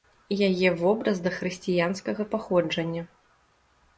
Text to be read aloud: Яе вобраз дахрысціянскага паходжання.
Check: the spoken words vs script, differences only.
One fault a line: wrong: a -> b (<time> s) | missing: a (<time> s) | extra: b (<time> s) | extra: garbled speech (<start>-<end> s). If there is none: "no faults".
no faults